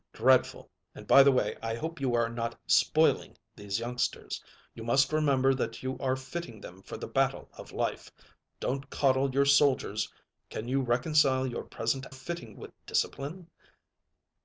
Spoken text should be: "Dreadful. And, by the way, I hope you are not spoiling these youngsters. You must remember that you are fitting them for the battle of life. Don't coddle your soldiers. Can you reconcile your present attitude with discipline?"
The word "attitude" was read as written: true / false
false